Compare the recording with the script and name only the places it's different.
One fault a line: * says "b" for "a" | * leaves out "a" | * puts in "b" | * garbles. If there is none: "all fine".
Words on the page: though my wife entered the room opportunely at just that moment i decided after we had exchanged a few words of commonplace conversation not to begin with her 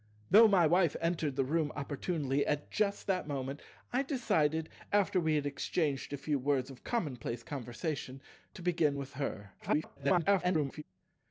* leaves out "not"
* garbles